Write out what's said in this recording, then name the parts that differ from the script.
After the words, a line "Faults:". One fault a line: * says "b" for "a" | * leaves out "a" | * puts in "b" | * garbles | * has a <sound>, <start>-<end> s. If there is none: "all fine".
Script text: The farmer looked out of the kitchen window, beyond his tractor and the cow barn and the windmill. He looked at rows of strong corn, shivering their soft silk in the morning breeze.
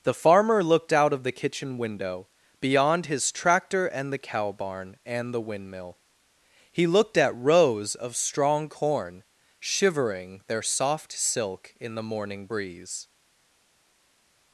The farmer looked out of the kitchen window, beyond his tractor and the cow barn and the windmill. He looked at rows of strong corn, shivering their soft silk in the morning breeze.
Faults:
all fine